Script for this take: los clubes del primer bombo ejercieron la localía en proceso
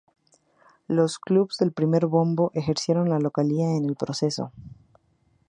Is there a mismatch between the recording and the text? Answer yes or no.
yes